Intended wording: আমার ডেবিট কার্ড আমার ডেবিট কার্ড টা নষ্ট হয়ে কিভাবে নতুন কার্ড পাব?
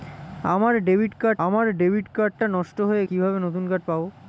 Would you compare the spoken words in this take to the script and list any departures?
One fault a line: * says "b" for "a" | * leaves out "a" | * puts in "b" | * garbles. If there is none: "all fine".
all fine